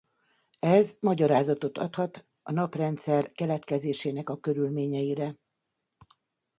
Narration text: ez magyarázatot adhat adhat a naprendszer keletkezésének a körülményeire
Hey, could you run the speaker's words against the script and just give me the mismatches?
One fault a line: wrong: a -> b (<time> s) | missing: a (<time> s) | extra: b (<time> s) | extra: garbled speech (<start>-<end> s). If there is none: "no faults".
missing: adhat (2.2 s)